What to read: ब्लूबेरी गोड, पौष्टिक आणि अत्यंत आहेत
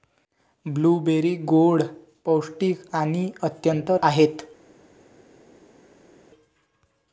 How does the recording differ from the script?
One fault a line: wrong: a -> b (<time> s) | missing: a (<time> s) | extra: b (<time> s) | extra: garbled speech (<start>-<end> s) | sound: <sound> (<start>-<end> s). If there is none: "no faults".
no faults